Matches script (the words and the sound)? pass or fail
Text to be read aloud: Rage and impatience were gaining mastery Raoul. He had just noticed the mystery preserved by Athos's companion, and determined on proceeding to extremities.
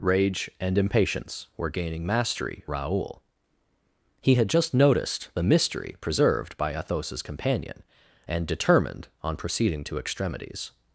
pass